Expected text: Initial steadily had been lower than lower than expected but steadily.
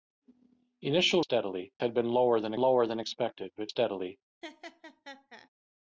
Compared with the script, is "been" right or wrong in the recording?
right